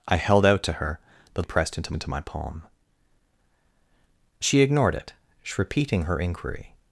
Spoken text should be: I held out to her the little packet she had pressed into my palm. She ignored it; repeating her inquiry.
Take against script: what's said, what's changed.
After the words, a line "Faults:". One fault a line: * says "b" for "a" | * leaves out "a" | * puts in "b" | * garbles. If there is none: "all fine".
I held out to her the had pressed into into my palm. She ignored it; repeating her inquiry.
Faults:
* leaves out "little packet she"
* puts in "into"